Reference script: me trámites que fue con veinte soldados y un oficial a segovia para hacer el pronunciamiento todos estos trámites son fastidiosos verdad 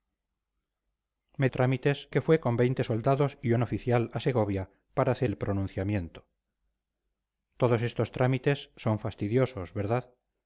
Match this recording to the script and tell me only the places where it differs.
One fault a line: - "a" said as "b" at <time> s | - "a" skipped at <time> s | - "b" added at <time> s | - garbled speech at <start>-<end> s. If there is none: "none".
none